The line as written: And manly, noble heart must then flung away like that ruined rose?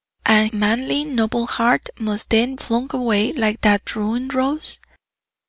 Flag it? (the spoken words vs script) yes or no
no